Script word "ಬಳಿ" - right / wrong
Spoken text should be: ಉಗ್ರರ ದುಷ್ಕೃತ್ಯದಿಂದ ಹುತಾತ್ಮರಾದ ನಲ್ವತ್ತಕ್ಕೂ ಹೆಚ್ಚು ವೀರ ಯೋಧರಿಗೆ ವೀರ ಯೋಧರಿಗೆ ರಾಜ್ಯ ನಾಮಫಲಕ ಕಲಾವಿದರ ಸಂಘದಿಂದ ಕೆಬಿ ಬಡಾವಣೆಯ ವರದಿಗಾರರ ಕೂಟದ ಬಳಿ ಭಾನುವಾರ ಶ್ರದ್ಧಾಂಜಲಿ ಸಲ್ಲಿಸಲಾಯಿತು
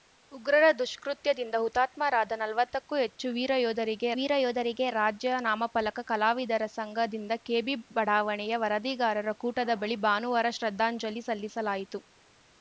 right